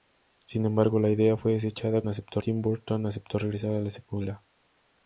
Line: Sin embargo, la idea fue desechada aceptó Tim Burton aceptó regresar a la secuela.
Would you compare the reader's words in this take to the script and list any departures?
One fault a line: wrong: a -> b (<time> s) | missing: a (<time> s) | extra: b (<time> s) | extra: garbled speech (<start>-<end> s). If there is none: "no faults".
no faults